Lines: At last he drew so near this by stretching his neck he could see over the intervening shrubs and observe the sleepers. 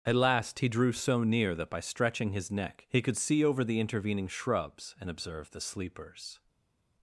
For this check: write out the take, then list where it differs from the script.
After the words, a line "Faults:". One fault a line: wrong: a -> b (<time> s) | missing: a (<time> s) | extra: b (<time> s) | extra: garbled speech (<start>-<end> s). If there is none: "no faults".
At last he drew so near that by stretching his neck he could see over the intervening shrubs and observe the sleepers.
Faults:
wrong: this -> that (1.6 s)